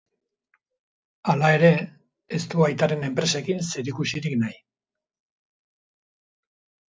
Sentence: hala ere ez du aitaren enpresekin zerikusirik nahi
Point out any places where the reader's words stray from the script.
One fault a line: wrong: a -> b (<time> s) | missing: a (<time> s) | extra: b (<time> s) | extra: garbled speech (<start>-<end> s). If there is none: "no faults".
no faults